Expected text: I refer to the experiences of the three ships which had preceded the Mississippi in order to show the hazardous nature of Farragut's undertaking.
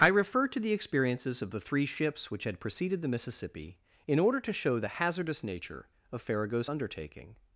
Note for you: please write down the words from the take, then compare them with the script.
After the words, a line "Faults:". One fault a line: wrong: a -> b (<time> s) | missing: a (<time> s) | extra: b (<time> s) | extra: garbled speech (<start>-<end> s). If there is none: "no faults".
I refer to the experiences of the three ships which had preceded the Mississippi in order to show the hazardous nature of Farragut's undertaking.
Faults:
no faults